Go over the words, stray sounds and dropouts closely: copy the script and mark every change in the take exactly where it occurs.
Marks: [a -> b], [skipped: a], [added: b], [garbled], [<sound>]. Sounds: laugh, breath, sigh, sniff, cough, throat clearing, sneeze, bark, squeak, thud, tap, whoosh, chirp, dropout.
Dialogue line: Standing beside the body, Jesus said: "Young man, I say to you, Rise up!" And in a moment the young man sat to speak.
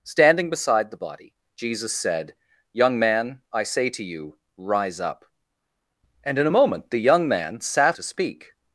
Standing beside the body, Jesus said: "Young man, I say to you, Rise up!" And in a moment the young man sat to speak.